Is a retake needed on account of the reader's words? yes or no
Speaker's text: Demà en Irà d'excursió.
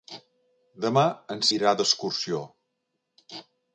no